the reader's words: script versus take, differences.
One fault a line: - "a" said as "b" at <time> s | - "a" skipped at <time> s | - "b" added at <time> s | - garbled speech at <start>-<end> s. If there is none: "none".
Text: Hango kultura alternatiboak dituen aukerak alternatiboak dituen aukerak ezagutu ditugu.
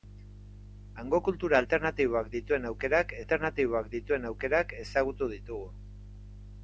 none